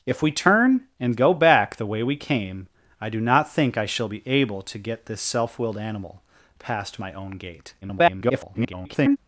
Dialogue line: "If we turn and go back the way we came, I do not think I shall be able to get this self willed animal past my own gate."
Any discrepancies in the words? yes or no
yes